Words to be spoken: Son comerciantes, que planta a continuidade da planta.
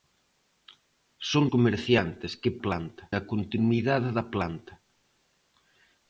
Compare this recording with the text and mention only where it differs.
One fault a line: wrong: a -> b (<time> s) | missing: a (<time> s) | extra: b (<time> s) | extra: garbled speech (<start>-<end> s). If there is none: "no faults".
no faults